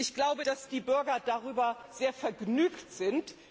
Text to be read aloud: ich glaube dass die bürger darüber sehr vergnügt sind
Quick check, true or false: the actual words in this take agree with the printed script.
true